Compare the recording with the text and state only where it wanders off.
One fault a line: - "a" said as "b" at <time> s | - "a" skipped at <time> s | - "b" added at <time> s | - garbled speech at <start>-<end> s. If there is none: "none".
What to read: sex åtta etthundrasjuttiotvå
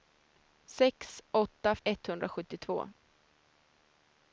none